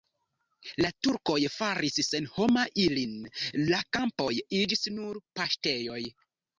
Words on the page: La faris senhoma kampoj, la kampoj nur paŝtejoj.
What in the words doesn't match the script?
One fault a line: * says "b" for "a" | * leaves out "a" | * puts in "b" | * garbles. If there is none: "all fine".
* puts in "turkoj"
* says "ilin" for "kampoj"
* puts in "iĝis"